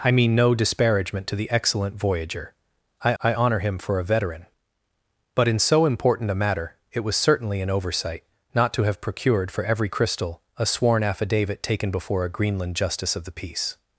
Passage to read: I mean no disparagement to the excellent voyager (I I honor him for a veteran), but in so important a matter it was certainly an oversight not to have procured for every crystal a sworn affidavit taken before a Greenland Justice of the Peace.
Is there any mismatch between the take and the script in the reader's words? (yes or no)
no